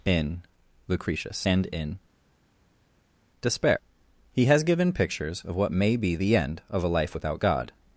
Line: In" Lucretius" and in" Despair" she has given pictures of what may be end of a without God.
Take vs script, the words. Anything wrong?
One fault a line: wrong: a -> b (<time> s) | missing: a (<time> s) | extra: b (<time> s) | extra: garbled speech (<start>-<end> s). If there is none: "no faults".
wrong: she -> he (4.3 s)
extra: the (6.1 s)
extra: life (6.9 s)